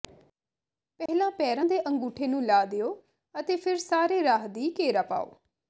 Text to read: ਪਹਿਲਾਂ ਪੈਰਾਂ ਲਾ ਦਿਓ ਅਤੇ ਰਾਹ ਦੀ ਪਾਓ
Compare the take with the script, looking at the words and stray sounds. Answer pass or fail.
fail